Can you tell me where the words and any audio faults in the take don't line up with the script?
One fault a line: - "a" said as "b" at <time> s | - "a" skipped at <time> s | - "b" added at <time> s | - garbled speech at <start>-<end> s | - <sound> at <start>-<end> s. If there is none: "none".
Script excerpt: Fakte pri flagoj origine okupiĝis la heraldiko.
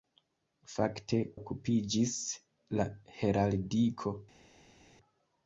- "pri flagoj origine" skipped at 1.2 s